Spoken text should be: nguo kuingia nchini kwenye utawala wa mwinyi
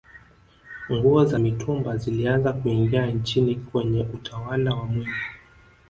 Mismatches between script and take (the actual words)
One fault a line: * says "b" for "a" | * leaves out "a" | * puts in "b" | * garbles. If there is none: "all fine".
* puts in "za mitumba zilianza"